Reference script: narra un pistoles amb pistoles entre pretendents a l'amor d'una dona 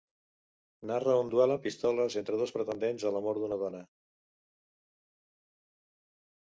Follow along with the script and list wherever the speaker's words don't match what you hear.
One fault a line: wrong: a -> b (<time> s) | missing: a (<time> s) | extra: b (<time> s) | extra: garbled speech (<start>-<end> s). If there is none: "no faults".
wrong: pistoles -> duel (1.3 s)
extra: dos (2.4 s)